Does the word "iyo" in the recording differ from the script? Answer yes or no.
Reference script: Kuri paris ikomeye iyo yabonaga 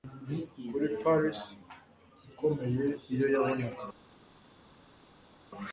no